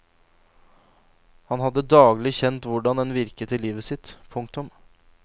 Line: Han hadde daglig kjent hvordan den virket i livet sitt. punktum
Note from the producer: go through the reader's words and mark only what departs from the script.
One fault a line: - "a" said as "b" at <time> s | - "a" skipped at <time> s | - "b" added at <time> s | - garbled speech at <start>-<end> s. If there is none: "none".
none